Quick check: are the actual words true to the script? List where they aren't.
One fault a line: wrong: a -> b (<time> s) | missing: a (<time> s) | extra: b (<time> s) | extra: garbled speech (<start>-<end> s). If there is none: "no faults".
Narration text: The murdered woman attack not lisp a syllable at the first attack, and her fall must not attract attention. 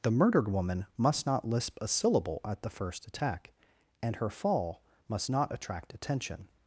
wrong: attack -> must (1.0 s)